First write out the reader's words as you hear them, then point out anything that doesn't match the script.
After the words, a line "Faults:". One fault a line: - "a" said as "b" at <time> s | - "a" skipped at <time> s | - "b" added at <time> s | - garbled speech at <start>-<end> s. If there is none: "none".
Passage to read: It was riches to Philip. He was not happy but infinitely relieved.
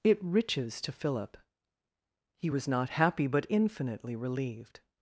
It riches to Philip. He was not happy but infinitely relieved.
Faults:
- "was" skipped at 0.2 s